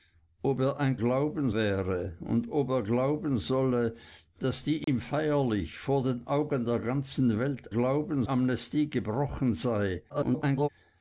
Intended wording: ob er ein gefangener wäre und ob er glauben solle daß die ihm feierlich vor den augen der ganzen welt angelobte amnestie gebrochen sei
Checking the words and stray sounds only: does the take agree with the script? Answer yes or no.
no